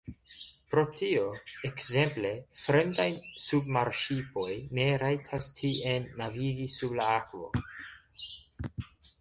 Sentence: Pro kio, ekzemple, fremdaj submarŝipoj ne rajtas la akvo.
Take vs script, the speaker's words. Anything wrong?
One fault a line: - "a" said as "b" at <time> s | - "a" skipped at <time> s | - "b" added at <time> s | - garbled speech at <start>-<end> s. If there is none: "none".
- "kio" said as "tio" at 1.0 s
- "tien navigi sub" added at 5.6 s